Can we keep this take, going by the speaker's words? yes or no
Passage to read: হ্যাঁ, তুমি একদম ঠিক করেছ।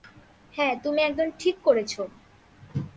yes